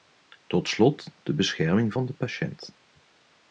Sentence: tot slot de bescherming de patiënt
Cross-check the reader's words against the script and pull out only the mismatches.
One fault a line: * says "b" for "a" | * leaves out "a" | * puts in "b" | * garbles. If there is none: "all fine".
* puts in "van"